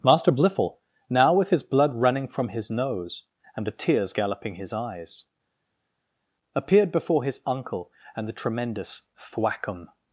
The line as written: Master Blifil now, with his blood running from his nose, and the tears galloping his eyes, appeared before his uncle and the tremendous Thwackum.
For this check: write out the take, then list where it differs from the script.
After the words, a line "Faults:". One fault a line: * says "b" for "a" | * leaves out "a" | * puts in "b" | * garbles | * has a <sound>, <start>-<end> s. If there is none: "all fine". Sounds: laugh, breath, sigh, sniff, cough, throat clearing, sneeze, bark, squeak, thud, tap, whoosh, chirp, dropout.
Master Blifil now, with his blood running from his nose, and the tears galloping his eyes, appeared before his uncle and the tremendous Thwackum.
Faults:
all fine